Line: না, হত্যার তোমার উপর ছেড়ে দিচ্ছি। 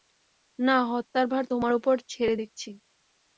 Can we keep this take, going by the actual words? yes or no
no